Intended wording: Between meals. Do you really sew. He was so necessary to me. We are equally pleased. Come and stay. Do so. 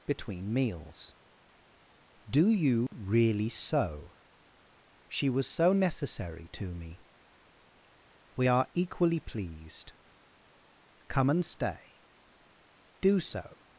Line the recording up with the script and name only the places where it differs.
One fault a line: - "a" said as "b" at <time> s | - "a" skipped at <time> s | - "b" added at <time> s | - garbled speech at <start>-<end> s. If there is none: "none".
- "He" said as "She" at 5.1 s